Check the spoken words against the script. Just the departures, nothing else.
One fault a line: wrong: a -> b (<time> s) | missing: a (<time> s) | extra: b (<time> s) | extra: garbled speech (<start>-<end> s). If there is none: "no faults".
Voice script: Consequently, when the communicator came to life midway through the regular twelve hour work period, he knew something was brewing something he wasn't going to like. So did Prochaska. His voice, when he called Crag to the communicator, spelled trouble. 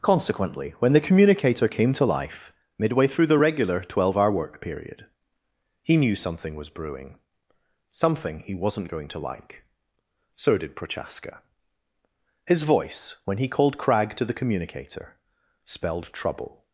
no faults